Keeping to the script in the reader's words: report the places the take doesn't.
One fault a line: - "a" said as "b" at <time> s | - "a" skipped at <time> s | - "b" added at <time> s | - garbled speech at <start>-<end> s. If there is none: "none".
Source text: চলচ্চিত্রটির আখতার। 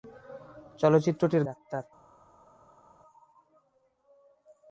none